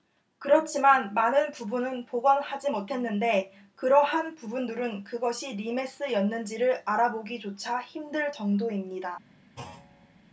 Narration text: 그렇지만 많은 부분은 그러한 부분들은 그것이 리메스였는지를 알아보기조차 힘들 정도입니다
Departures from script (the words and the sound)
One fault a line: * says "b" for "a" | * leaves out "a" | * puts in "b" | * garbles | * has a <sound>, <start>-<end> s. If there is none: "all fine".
* puts in "복원하지 못했는데"
* has a thud, 9.6-10.2 s